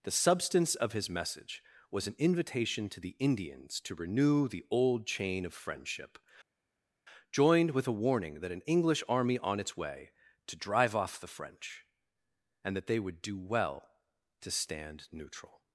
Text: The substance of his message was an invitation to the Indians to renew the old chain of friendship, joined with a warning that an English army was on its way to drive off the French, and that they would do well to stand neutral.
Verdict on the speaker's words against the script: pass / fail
fail